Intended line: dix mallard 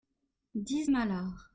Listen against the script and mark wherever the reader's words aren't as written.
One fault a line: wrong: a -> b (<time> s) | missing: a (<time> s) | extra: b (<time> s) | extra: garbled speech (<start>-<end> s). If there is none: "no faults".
no faults